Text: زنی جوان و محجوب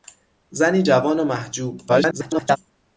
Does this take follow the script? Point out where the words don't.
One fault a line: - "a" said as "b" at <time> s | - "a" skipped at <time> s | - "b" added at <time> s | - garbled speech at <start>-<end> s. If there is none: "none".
- garbled speech at 1.9-2.6 s